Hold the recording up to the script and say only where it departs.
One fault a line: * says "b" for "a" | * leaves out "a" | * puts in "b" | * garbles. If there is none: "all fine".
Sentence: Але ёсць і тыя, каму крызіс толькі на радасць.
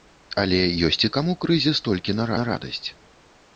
* leaves out "тыя"
* puts in "на"